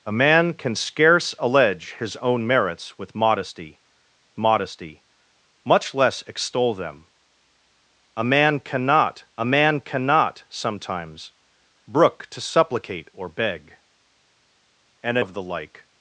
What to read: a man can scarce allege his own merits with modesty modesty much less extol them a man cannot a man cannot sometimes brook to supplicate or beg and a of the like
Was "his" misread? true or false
false